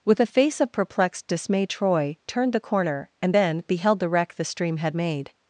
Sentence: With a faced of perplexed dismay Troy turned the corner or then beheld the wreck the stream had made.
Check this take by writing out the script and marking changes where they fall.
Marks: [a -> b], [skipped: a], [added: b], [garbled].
With a [faced -> face] of perplexed dismay Troy turned the corner [or -> and] then beheld the wreck the stream had made.